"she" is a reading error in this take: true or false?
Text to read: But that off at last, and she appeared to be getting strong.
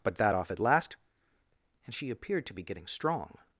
false